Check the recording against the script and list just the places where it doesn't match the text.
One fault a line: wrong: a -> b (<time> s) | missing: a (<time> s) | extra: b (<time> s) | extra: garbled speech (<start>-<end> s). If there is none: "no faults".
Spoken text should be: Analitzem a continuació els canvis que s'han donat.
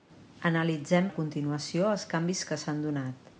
no faults